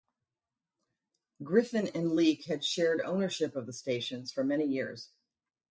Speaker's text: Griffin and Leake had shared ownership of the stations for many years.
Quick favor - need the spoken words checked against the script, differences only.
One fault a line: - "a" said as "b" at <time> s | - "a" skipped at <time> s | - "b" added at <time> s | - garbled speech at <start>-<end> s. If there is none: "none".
none